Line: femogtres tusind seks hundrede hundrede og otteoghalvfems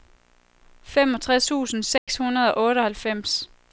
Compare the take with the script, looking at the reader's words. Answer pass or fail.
fail